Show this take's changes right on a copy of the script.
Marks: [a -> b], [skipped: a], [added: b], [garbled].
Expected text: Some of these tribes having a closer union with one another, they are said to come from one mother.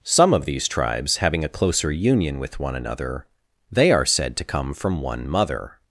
Some of these tribes having a closer union with one another, they are said to come from one mother.